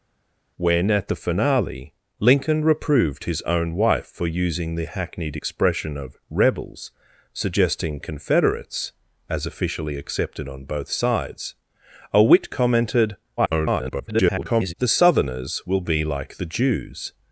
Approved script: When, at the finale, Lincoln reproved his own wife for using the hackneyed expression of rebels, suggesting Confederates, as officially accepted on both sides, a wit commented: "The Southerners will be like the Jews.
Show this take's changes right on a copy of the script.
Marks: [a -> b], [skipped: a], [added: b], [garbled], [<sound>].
When, at the finale, Lincoln reproved his own wife for using the hackneyed expression of rebels, suggesting Confederates, as officially accepted on both sides, a wit commented: [garbled] "The Southerners will be like the Jews.